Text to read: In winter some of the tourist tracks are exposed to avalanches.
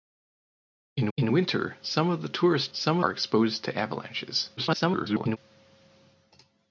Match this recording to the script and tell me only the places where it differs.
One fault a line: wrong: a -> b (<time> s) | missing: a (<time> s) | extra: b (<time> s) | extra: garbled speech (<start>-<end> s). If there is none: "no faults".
extra: in (1.2 s)
wrong: tracks -> some (2.7 s)
extra: garbled speech (4.6-5.4 s)